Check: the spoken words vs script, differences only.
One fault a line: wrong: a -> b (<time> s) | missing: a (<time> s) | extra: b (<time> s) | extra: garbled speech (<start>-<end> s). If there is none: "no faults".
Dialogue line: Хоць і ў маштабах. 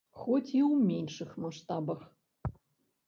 extra: меншых (0.9 s)